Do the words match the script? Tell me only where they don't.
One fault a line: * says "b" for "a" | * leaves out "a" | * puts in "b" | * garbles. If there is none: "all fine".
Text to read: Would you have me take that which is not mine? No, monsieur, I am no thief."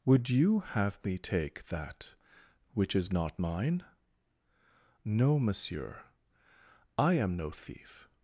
all fine